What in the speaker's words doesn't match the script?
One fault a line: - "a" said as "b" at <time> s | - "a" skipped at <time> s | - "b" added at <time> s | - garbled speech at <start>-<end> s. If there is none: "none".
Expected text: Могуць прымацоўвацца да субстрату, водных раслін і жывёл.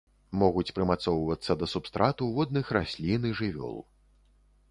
none